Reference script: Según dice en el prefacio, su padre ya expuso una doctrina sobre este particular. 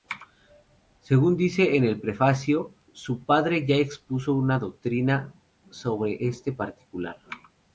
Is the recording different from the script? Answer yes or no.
no